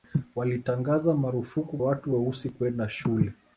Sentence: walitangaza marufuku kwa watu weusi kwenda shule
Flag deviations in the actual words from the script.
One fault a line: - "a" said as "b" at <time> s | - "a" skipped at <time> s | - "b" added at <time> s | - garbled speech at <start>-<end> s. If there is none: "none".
- "kwa" skipped at 1.8 s